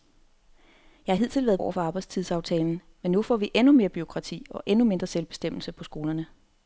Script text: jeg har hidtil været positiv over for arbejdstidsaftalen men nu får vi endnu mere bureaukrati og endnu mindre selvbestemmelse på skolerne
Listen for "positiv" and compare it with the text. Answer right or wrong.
wrong